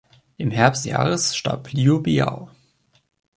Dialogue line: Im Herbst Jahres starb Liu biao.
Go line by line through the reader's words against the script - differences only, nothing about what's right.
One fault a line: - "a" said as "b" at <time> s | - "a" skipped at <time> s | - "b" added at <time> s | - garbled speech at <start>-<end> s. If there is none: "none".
none